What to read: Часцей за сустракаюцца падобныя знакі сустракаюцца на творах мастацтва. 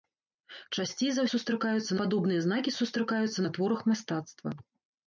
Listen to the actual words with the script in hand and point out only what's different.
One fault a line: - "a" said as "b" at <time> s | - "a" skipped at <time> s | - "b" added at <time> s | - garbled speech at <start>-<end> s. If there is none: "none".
none